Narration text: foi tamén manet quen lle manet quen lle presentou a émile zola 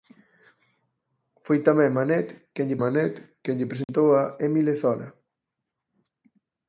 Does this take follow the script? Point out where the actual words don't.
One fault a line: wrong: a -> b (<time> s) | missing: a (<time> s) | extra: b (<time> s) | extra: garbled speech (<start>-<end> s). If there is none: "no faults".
no faults